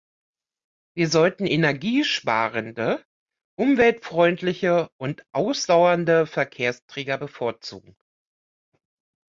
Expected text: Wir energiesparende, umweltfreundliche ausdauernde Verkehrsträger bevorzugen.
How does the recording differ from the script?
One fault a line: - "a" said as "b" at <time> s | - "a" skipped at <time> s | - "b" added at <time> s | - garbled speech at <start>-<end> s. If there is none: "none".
- "sollten" added at 1.1 s
- "und" added at 5.0 s